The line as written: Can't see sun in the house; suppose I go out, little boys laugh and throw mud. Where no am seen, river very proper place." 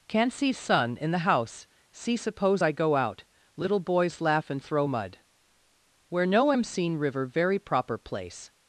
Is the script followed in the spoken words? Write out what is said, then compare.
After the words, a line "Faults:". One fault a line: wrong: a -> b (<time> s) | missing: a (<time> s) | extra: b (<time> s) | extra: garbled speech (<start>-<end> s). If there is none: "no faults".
Can't see sun in the house; see suppose I go out, little boys laugh and throw mud. Where no am seen, river very proper place."
Faults:
extra: see (1.9 s)